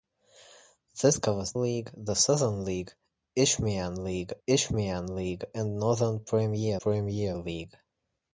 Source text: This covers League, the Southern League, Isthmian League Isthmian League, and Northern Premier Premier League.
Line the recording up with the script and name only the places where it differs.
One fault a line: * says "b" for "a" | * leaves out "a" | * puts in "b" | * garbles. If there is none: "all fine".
all fine